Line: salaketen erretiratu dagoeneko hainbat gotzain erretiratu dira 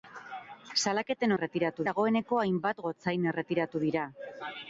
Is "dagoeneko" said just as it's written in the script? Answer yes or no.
yes